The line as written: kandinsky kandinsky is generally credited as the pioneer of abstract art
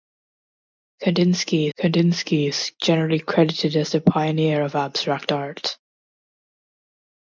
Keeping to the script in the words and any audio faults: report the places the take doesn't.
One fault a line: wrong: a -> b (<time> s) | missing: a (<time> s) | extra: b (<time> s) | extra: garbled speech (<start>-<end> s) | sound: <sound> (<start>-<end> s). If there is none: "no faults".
no faults